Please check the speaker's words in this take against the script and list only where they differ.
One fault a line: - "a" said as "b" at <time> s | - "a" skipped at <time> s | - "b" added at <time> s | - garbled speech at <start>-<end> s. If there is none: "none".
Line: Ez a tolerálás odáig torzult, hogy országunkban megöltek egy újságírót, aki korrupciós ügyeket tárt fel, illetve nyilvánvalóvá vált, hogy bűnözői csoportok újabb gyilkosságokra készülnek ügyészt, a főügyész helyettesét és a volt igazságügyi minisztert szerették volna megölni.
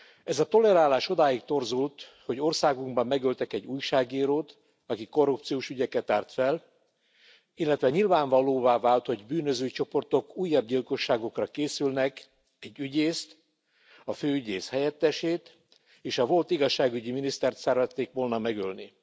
- "egy" added at 12.6 s